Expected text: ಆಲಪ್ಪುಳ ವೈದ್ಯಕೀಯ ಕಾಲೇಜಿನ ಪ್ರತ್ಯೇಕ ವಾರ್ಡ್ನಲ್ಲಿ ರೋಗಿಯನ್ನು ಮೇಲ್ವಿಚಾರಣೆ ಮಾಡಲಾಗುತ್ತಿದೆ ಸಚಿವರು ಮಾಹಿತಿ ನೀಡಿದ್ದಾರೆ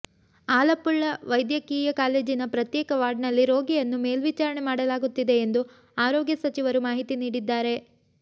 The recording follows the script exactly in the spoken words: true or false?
false